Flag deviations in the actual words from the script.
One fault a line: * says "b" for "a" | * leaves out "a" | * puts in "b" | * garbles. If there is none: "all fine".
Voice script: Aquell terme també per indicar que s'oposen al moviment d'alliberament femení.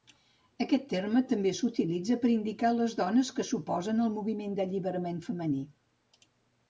* says "Aquest" for "Aquell"
* puts in "s'utilitza"
* puts in "les dones"